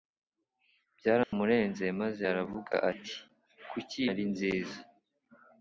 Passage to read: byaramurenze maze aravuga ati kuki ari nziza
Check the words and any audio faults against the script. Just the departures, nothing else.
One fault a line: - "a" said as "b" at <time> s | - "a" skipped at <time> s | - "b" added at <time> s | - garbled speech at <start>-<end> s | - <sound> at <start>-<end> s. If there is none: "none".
- dropout at 1.2-1.3 s